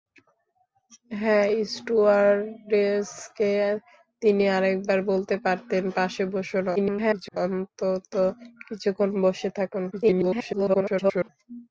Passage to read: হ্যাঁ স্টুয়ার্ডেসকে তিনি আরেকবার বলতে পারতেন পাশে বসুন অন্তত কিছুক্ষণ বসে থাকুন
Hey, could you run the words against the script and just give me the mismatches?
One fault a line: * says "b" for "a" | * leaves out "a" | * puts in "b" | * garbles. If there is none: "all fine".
* garbles
* garbles